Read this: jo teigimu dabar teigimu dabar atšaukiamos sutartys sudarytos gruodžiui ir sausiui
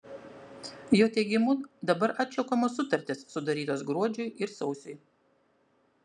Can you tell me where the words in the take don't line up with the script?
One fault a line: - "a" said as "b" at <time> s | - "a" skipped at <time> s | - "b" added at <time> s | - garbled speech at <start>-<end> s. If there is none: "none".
- "teigimu dabar" skipped at 2.1 s